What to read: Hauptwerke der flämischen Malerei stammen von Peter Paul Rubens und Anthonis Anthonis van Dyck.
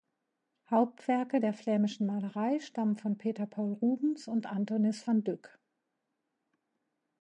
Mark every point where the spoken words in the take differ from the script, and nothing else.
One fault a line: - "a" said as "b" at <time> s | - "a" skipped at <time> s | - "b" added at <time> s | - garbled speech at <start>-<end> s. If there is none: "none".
- "Anthonis" skipped at 5.1 s